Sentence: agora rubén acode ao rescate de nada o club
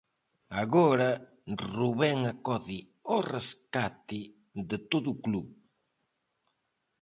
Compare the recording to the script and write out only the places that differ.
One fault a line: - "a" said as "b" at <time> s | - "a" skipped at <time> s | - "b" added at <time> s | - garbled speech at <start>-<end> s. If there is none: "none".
- "nada" said as "todo" at 4.9 s